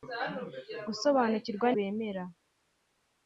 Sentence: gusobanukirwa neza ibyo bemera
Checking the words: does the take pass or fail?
fail